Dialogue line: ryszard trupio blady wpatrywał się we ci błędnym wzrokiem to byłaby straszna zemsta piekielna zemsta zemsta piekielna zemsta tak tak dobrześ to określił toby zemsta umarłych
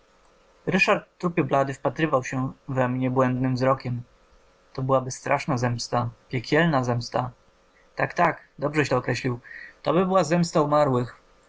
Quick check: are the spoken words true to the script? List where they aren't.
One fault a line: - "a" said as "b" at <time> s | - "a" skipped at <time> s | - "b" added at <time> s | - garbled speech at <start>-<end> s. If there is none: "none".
- "ci" said as "mnie" at 2.9 s
- "zemsta piekielna zemsta" skipped at 7.3 s
- "była" added at 10.1 s